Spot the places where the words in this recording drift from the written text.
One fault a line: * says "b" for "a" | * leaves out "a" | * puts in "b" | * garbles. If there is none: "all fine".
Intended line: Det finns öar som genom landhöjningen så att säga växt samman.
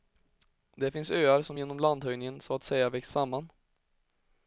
all fine